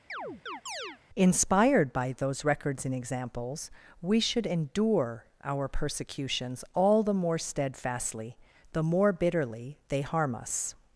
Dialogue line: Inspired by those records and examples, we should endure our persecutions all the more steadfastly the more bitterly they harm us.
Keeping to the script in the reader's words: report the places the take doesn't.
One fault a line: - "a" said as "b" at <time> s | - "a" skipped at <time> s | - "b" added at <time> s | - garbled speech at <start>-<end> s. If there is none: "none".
none